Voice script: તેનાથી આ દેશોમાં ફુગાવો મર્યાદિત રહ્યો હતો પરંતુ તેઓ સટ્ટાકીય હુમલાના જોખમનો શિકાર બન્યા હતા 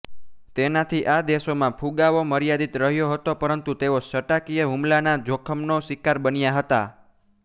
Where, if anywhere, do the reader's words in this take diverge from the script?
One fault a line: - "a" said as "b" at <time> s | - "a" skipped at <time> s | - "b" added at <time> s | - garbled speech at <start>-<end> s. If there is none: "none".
none